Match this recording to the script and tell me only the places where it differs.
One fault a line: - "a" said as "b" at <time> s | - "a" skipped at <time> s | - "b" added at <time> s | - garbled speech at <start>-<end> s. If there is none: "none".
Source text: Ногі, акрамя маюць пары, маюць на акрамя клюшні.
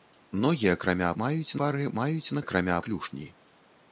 none